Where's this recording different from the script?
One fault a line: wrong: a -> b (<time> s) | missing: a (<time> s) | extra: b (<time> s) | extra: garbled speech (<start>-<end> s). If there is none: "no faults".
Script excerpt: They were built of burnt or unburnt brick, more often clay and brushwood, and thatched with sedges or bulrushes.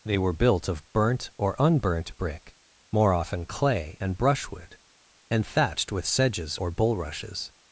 no faults